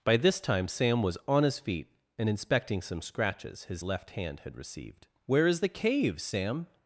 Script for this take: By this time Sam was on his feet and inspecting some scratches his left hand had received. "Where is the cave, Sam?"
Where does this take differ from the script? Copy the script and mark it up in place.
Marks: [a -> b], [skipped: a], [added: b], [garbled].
By this time Sam was on his feet and inspecting some scratches his left hand had received. "Where is the cave, Sam?"